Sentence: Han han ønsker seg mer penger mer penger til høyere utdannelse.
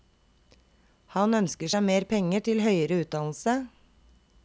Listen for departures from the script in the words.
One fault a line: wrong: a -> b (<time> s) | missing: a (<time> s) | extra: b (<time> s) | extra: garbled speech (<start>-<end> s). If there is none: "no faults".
missing: han (1.4 s)
missing: mer penger (2.4 s)